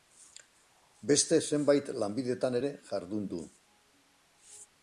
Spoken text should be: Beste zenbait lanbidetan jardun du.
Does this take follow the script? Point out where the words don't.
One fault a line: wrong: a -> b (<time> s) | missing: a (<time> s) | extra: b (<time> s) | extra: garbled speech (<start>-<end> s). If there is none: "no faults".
extra: ere (2.6 s)